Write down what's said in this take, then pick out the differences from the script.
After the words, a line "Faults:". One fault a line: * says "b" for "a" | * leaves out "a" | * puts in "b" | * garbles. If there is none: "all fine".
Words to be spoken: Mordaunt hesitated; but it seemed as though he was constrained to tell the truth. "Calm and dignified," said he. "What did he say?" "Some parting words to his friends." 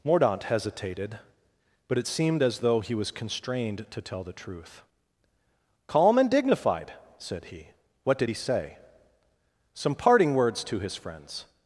Mordaunt hesitated; but it seemed as though he was constrained to tell the truth. "Calm and dignified," said he. "What did he say?" "Some parting words to his friends."
Faults:
all fine